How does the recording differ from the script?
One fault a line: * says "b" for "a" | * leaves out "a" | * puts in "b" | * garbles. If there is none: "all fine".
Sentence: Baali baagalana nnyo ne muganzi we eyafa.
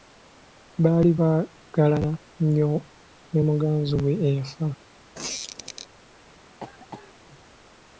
all fine